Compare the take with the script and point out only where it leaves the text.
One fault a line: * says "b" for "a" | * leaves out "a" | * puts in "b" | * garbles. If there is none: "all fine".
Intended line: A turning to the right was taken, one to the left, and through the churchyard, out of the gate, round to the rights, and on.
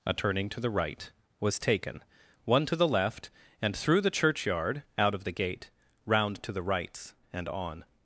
all fine